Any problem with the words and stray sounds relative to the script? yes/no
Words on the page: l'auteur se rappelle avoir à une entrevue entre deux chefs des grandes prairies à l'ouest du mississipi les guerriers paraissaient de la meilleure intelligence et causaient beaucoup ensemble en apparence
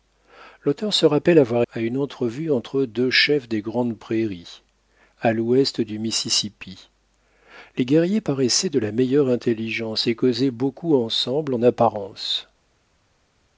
no